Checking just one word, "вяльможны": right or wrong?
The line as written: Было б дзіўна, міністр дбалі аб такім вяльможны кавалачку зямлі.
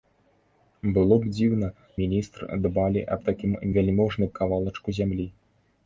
right